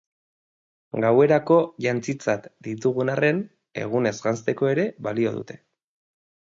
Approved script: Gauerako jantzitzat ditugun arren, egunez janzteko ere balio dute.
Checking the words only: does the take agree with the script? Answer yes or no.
yes